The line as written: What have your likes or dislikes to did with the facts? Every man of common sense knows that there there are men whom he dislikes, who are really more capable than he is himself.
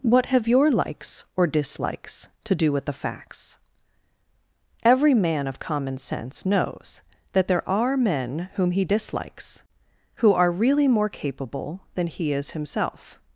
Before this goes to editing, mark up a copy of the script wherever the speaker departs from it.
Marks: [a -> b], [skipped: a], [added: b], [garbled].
What have your likes or dislikes to [did -> do] with the facts? Every man of common sense knows that there [skipped: there] are men whom he dislikes, who are really more capable than he is himself.